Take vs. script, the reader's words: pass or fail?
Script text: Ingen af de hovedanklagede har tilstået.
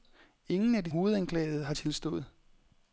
pass